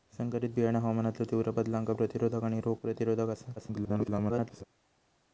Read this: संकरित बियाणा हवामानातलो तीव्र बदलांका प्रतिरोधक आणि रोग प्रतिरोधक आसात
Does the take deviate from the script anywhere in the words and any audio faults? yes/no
yes